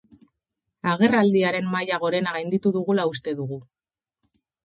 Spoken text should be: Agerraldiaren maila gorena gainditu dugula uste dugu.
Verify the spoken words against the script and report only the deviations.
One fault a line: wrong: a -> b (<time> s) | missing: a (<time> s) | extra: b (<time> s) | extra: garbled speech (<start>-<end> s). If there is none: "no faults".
no faults